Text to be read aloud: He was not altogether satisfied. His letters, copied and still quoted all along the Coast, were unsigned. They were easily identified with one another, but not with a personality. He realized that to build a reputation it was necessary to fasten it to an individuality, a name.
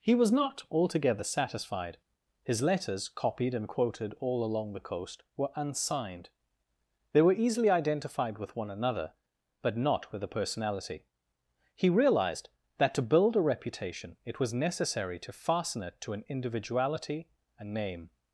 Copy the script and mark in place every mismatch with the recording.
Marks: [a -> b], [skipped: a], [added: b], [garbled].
He was not altogether satisfied. His letters, copied and [skipped: still] quoted all along the Coast, were unsigned. They were easily identified with one another, but not with a personality. He realized that to build a reputation it was necessary to fasten it to an individuality, a name.